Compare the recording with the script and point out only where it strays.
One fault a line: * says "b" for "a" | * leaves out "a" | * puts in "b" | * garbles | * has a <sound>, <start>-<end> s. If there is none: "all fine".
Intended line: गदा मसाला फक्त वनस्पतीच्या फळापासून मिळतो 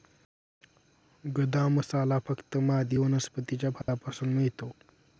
* puts in "मादी"
* has a dropout, 3.8-3.9 s